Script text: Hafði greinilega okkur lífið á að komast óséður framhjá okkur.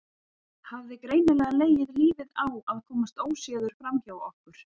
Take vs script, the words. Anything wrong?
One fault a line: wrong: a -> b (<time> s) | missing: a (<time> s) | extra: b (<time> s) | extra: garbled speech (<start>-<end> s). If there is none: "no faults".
wrong: okkur -> legið (1.6 s)